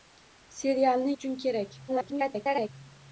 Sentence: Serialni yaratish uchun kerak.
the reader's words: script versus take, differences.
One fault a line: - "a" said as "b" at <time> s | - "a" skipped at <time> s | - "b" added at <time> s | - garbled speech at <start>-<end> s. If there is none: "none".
- "yaratish" skipped at 1.1 s
- garbled speech at 1.9-2.7 s